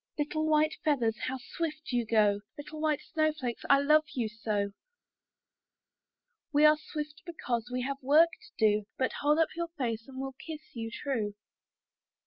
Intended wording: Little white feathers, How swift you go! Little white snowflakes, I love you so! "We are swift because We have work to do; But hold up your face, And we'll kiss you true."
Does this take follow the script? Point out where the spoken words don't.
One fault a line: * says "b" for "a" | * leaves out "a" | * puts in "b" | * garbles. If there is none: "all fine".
all fine